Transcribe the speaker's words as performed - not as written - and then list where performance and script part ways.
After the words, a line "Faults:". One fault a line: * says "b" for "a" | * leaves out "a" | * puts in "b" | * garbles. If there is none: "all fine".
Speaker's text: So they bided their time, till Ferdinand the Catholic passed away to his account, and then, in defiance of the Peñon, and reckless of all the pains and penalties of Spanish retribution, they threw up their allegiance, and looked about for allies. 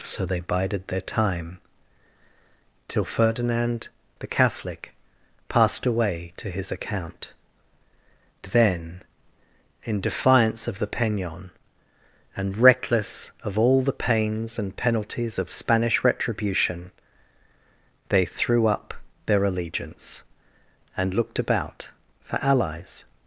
So they bided their time, till Ferdinand the Catholic passed away to his account, then, in defiance of the Peñon, and reckless of all the pains and penalties of Spanish retribution, they threw up their allegiance, and looked about for allies.
Faults:
* leaves out "and"